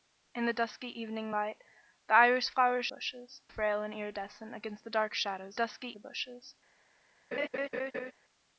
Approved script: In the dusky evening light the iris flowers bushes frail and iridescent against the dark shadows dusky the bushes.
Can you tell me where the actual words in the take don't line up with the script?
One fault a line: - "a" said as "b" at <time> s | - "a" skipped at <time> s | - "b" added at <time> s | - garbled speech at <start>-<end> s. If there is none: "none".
none